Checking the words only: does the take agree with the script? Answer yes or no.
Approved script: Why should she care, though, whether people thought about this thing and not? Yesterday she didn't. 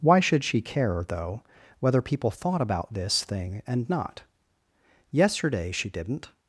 yes